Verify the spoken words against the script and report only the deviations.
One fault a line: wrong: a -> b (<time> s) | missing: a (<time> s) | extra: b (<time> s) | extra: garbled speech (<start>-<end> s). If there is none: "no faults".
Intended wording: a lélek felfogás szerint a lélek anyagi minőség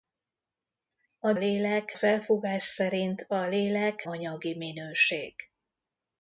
no faults